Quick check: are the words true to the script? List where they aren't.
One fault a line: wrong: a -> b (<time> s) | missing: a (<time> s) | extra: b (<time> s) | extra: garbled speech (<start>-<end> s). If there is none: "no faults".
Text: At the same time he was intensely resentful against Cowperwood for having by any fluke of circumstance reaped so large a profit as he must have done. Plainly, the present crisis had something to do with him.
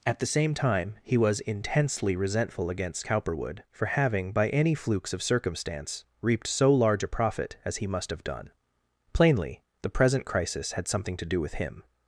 wrong: fluke -> flukes (4.7 s)